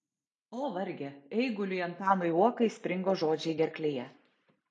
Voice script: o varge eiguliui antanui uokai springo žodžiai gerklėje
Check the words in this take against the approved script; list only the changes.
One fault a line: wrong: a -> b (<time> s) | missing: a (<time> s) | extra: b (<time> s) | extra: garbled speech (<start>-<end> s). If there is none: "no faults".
no faults